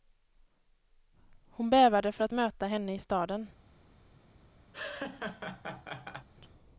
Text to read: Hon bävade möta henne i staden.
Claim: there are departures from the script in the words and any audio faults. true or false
true